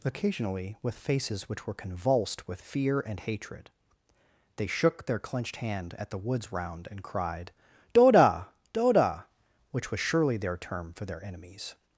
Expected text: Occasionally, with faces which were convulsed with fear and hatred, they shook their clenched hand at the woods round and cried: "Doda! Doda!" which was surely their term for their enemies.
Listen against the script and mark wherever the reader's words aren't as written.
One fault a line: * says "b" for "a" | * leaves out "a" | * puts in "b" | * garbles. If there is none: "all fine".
all fine